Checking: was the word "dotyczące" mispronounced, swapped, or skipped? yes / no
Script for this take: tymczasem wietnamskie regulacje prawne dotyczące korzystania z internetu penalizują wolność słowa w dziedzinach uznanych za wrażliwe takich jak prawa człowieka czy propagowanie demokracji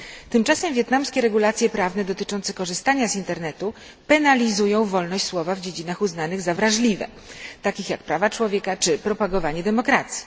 no